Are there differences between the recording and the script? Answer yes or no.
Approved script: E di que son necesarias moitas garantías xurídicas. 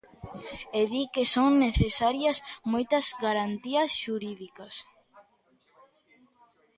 no